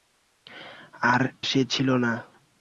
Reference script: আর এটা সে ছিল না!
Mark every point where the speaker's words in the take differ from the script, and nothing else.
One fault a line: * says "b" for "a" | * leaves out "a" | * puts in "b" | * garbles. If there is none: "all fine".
* leaves out "এটা"